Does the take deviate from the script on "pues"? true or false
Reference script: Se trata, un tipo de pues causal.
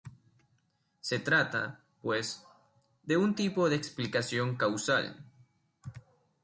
true